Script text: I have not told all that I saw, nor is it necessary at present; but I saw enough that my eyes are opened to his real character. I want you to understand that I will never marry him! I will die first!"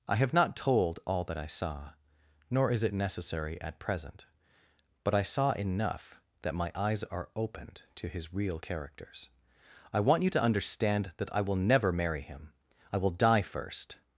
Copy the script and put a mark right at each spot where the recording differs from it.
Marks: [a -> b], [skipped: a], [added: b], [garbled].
I have not told all that I saw, nor is it necessary at present; but I saw enough that my eyes are opened to his real [character. -> characters] I want you to understand that I will never marry him! I will die first!"